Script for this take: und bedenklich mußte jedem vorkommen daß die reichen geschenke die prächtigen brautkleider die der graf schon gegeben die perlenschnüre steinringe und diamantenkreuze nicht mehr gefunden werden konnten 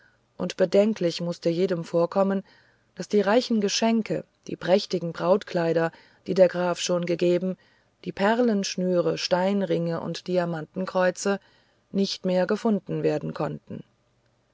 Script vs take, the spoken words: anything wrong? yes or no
no